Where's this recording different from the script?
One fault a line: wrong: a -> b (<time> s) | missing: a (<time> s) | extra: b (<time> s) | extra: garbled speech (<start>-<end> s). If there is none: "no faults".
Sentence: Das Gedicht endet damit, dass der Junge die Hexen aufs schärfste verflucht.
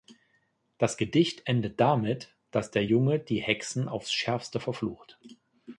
no faults